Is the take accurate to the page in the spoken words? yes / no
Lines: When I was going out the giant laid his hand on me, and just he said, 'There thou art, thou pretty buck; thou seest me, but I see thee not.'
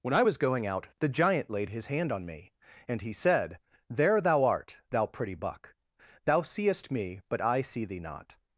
no